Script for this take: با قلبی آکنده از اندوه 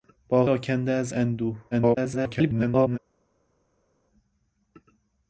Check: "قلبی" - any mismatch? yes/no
yes